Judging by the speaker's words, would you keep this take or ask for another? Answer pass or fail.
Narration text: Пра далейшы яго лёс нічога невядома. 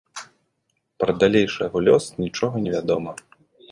pass